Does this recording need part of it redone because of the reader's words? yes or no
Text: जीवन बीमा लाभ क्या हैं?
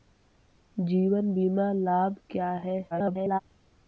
yes